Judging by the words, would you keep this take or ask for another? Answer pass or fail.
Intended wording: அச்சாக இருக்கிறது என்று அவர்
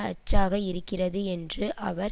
pass